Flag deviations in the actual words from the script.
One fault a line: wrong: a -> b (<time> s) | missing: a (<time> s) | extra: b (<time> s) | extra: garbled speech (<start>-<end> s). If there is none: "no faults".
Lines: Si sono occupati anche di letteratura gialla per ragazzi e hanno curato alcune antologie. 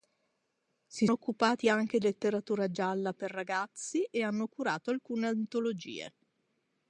missing: sono (1.1 s)
missing: di (2.0 s)